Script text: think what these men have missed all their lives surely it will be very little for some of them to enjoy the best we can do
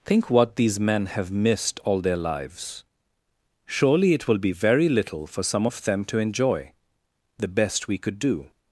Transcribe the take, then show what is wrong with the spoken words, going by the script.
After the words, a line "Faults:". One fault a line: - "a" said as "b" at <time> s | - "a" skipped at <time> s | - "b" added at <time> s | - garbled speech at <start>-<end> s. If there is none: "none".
think what these men have missed all their lives surely it will be very little for some of them to enjoy the best we could do
Faults:
- "can" said as "could" at 8.0 s